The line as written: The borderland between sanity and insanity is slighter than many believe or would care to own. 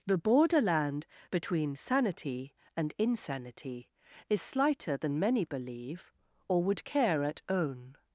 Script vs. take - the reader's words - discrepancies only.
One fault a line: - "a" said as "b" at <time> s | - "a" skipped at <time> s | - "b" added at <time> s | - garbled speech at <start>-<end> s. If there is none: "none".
- "to" said as "at" at 7.2 s